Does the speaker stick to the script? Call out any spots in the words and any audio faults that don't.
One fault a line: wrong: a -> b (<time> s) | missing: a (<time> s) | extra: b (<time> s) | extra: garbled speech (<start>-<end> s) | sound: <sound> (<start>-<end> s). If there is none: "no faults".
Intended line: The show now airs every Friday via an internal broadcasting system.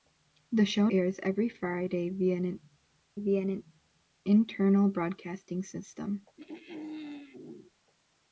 missing: now (0.9 s)
extra: via an (3.2 s)
sound: throat clearing (6.4-7.7 s)